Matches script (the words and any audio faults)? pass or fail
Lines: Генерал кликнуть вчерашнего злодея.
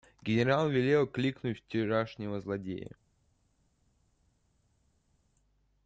fail